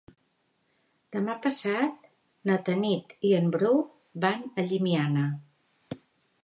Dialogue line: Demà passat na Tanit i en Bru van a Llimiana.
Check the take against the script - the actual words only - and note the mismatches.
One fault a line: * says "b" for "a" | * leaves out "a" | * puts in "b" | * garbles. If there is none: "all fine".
all fine